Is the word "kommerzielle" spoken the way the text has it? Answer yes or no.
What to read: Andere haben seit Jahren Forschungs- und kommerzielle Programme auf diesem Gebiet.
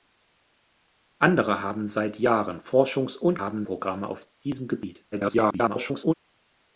no